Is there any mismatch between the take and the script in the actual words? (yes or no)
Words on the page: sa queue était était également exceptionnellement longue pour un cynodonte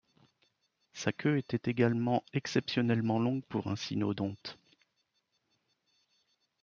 yes